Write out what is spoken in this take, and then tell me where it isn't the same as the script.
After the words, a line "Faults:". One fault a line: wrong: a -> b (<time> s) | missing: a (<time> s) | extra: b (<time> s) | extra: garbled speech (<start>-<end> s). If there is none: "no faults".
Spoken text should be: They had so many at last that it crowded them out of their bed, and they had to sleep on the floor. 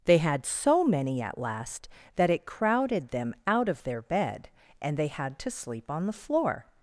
They had so many at last that it crowded them out of their bed, and they had to sleep on the floor.
Faults:
no faults